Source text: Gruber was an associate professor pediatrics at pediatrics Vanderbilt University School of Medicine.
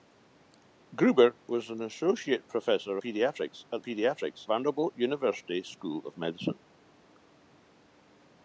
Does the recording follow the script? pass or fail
pass